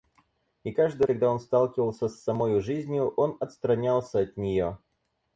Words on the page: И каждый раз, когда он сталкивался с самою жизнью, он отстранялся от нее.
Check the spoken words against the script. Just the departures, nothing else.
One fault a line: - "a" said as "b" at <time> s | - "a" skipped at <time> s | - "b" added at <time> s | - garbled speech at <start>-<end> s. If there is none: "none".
- "раз" skipped at 1.1 s